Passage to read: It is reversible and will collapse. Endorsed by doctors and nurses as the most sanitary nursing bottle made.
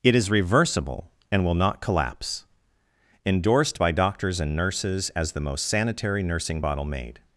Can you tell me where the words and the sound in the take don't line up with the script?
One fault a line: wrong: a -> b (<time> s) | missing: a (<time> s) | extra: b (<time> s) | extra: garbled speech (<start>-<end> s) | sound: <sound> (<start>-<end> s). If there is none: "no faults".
extra: not (1.5 s)